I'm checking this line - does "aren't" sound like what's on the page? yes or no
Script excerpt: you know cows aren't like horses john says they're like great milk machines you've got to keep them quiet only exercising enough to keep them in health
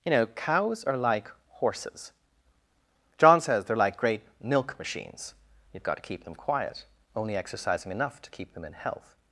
no